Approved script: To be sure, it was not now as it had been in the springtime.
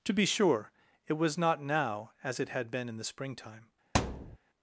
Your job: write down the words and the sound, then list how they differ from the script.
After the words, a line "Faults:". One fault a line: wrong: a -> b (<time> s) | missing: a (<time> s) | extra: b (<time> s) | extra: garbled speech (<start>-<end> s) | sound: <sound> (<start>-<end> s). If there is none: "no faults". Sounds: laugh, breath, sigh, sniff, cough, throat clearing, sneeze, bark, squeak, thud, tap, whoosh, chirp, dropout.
To be sure, it was not now as it had been in the springtime.
Faults:
sound: thud (3.9-4.4 s)